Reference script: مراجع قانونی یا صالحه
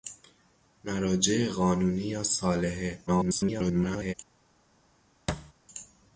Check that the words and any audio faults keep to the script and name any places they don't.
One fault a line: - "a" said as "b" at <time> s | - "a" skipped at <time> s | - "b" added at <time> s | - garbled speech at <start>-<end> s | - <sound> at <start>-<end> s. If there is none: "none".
- garbled speech at 3.1-4.1 s
- thud at 5.3-5.5 s